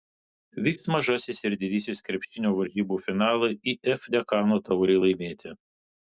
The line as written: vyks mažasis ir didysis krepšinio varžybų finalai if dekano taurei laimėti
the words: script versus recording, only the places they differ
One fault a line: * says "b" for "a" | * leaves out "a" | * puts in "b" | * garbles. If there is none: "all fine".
all fine